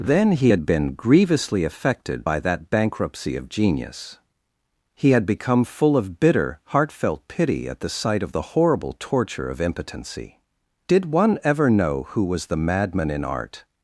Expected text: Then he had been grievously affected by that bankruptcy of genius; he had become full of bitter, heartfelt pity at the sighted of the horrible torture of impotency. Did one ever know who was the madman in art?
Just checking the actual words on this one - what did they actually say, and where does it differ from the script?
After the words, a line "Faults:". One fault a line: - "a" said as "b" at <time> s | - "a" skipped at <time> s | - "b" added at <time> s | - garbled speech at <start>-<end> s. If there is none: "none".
Then he had been grievously affected by that bankruptcy of genius; he had become full of bitter, heartfelt pity at the sight of the horrible torture of impotency. Did one ever know who was the madman in art?
Faults:
- "sighted" said as "sight" at 7.9 s